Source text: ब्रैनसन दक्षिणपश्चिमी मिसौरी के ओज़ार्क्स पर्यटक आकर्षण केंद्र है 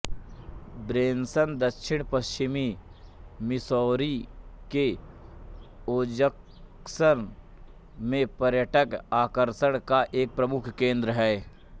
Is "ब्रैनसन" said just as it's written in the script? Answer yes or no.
yes